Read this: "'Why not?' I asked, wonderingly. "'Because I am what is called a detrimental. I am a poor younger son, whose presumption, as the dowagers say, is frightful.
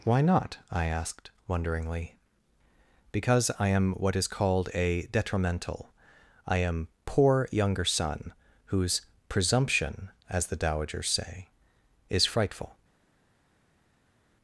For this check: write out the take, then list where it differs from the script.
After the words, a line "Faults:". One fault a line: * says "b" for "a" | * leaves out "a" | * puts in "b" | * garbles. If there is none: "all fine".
"'Why not?' I asked, wonderingly. "'Because I am what is called a detrimental. I am poor younger son, whose presumption, as the dowagers say, is frightful.
Faults:
* leaves out "a"